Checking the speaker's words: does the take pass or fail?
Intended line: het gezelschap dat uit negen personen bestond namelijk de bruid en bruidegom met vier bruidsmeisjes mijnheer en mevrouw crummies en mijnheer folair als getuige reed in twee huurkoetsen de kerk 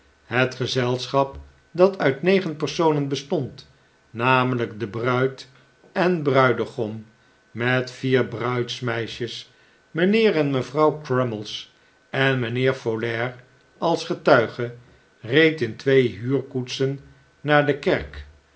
fail